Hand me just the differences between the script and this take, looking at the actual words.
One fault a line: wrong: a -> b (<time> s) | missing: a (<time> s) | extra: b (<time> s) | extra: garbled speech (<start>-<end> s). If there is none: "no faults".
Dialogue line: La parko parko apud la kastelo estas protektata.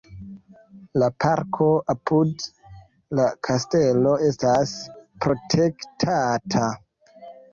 missing: parko (1.6 s)